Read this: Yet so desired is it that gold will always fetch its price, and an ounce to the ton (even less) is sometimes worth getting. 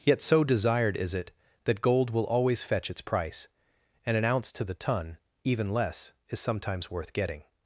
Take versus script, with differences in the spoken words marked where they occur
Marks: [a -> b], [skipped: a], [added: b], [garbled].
Yet so desired is it that gold will always fetch its price, and an ounce to the ton (even less) is sometimes worth getting.